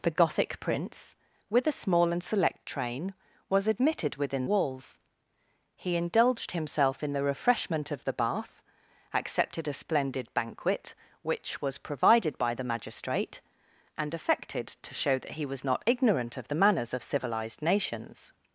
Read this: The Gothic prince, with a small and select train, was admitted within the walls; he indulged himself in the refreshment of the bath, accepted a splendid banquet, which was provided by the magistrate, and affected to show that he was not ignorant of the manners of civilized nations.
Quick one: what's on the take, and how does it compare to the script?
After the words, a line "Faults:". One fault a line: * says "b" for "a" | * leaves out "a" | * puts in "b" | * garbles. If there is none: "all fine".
The Gothic prince, with a small and select train, was admitted within walls; he indulged himself in the refreshment of the bath, accepted a splendid banquet, which was provided by the magistrate, and affected to show that he was not ignorant of the manners of civilized nations.
Faults:
* leaves out "the"